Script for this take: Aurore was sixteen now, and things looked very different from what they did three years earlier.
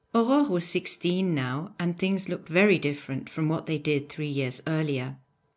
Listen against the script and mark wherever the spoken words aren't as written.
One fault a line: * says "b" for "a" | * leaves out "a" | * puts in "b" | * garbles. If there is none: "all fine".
all fine